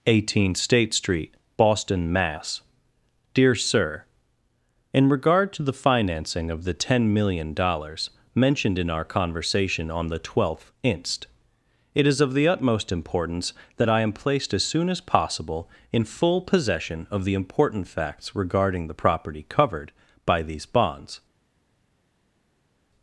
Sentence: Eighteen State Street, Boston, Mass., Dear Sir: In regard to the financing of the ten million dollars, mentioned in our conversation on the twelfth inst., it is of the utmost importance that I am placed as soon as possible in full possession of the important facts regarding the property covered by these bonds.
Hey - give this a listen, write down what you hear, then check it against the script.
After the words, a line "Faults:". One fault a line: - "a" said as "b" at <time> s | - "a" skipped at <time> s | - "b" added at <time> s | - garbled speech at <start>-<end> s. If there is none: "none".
Eighteen State Street, Boston, Mass., Dear Sir: In regard to the financing of the ten million dollars, mentioned in our conversation on the twelfth inst., it is of the utmost importance that I am placed as soon as possible in full possession of the important facts regarding the property covered by these bonds.
Faults:
none